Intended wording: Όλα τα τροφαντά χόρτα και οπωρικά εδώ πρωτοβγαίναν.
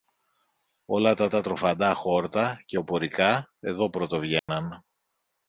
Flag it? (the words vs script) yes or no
yes